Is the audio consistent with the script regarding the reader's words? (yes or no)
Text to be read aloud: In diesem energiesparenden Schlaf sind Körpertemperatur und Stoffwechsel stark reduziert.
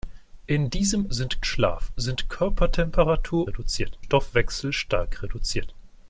no